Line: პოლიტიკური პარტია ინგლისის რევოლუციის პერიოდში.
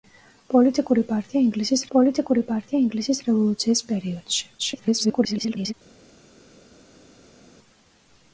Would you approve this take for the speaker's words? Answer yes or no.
no